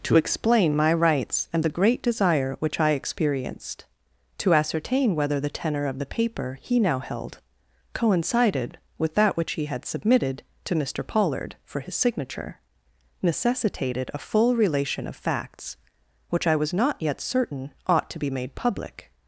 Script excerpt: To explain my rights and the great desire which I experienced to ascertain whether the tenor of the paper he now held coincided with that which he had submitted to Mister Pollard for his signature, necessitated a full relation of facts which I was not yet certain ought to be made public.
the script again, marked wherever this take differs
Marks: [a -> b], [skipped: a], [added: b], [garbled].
To explain my rights and the great desire which I experienced to ascertain whether the tenor of the paper he now held coincided with that which he had submitted to Mister Pollard for his signature, necessitated a full relation of facts which I was not yet certain ought to be made public.